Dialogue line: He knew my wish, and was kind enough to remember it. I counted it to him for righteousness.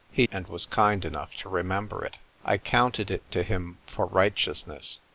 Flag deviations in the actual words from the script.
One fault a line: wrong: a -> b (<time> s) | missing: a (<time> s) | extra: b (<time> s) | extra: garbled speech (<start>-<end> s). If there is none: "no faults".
missing: knew my wish (0.2 s)